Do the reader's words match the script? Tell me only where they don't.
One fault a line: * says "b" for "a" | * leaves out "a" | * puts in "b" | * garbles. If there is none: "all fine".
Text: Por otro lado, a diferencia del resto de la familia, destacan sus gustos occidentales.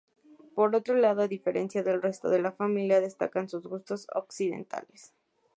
all fine